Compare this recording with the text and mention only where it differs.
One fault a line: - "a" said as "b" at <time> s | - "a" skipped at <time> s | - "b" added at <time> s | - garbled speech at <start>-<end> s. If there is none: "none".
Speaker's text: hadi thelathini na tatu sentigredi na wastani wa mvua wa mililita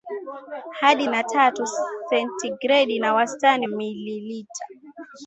- "thelathini" skipped at 1.1 s
- "wa mvua wa" skipped at 3.7 s